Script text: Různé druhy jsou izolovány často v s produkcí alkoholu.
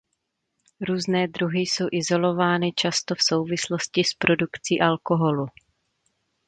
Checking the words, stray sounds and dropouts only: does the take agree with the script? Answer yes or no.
no